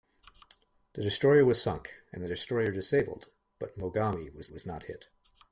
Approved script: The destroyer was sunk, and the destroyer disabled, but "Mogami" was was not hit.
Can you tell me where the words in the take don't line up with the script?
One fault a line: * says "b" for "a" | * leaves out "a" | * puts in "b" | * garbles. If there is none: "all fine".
all fine